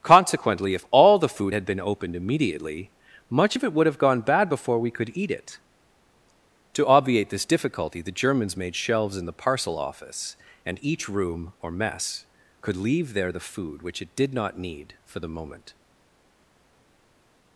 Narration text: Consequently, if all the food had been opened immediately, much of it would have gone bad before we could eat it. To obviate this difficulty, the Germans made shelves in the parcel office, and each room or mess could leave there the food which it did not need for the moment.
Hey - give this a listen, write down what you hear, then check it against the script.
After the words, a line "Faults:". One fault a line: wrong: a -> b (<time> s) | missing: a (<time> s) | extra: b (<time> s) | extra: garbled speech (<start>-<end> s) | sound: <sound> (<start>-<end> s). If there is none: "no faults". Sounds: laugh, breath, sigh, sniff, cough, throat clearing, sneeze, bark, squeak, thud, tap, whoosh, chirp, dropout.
Consequently, if all the food had been opened immediately, much of it would have gone bad before we could eat it. To obviate this difficulty, the Germans made shelves in the parcel office, and each room or mess could leave there the food which it did not need for the moment.
Faults:
no faults